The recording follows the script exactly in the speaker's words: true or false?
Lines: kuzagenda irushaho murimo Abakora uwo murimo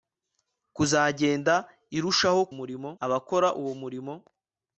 true